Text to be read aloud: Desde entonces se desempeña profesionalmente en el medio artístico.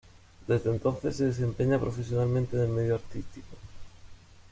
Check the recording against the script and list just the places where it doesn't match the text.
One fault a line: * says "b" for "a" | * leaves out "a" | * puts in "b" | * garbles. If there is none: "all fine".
all fine